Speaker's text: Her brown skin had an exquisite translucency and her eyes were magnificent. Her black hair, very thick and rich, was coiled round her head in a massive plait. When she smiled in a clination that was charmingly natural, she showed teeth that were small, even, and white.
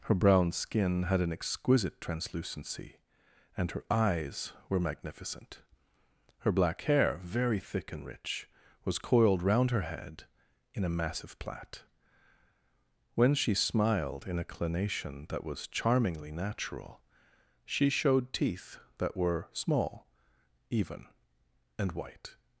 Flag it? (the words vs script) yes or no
no